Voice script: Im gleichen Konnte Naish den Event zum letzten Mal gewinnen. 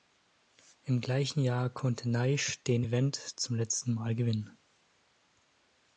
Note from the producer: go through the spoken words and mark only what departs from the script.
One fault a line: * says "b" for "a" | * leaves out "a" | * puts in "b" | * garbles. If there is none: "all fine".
* puts in "Jahr"